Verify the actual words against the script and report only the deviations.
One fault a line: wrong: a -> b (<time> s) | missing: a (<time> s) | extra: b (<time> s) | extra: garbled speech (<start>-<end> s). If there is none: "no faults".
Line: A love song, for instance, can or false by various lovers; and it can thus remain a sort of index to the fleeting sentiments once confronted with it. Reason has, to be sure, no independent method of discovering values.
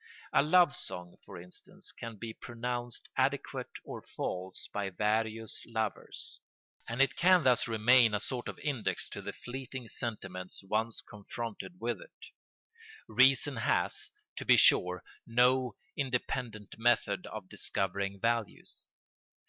extra: be pronounced adequate (2.2 s)